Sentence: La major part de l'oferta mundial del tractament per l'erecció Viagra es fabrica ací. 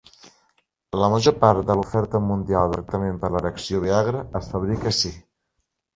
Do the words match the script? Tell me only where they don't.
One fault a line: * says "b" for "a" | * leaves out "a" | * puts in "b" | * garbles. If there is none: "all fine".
* leaves out "del"